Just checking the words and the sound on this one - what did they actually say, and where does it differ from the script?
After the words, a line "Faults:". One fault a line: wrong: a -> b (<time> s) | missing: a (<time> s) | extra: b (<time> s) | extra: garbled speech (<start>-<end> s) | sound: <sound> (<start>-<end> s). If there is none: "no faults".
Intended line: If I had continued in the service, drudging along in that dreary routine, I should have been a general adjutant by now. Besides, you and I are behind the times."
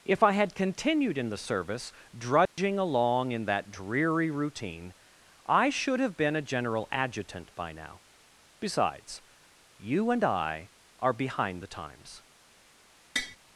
If I had continued in the service, drudging along in that dreary routine, I should have been a general adjutant by now. Besides, you and I are behind the times."
Faults:
sound: dropout (2.5-2.6 s)
sound: tap (13.2-13.4 s)